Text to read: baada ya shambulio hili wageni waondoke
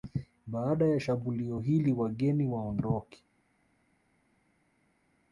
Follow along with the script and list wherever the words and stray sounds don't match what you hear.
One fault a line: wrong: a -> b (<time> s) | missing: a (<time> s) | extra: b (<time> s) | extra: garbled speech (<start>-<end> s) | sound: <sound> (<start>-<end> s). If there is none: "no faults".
no faults